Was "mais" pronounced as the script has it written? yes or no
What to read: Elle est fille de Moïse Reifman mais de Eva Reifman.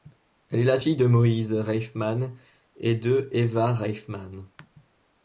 no